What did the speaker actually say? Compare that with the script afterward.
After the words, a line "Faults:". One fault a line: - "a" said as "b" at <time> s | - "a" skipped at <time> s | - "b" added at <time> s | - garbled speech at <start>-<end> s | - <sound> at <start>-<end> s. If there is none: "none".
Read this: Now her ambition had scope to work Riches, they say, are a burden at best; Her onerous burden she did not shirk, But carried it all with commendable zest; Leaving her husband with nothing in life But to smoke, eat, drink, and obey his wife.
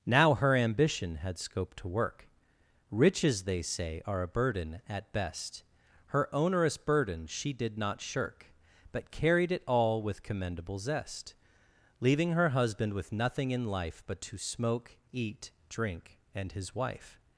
Now her ambition had scope to work Riches, they say, are a burden at best; Her onerous burden she did not shirk, But carried it all with commendable zest; Leaving her husband with nothing in life But to smoke, eat, drink, and his wife.
Faults:
- "obey" skipped at 16.5 s